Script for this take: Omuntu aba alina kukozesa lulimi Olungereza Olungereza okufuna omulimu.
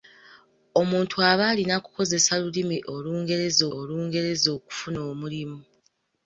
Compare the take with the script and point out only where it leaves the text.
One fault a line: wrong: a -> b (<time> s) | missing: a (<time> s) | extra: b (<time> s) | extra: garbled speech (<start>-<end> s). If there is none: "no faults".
no faults